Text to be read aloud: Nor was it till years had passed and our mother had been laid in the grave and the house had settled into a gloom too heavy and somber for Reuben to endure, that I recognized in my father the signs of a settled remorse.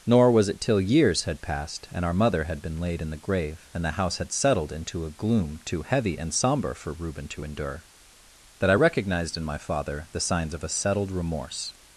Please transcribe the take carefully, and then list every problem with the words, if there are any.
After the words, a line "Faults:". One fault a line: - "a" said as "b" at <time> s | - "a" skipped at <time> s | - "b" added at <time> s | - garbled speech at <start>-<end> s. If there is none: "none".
Nor was it till years had passed and our mother had been laid in the grave and the house had settled into a gloom too heavy and somber for Reuben to endure, that I recognized in my father the signs of a settled remorse.
Faults:
none